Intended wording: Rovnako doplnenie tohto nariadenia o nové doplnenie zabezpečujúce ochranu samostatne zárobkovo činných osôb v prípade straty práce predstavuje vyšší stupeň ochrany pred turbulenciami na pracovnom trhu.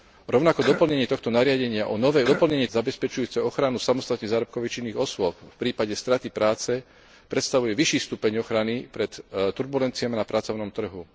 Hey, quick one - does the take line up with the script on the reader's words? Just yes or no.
yes